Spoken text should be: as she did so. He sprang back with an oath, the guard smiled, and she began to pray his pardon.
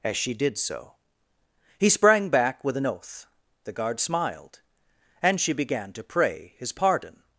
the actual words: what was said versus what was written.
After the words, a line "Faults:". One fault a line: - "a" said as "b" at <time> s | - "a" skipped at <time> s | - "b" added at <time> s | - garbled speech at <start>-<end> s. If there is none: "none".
as she did so. He sprang back with an oath, the guard smiled, and she began to pray his pardon.
Faults:
none